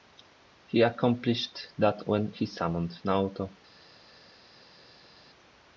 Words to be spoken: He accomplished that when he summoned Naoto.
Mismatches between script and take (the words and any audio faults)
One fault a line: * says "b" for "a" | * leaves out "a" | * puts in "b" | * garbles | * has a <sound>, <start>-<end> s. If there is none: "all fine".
all fine